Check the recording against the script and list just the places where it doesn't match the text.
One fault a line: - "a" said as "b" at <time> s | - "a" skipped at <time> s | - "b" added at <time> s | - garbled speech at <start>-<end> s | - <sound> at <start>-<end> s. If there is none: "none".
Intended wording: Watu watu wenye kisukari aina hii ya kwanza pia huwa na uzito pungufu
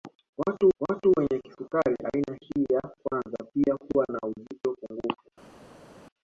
none